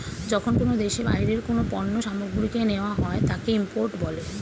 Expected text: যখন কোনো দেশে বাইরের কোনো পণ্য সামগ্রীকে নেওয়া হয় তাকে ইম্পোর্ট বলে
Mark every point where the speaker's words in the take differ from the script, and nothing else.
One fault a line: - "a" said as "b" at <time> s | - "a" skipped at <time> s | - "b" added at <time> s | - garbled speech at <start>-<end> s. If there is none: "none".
none